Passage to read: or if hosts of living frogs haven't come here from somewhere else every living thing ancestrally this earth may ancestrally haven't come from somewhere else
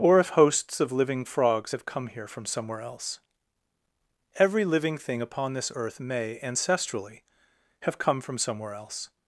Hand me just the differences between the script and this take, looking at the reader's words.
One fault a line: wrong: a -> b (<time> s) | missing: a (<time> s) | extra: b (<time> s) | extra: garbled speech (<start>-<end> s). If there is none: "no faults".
wrong: haven't -> have (1.7 s)
wrong: ancestrally -> upon (5.2 s)
wrong: haven't -> have (7.8 s)